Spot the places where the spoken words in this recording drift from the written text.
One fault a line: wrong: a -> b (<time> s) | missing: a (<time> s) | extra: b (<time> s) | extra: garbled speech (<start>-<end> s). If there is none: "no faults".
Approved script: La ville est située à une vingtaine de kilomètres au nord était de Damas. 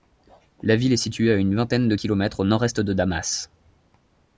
wrong: était -> est (2.6 s)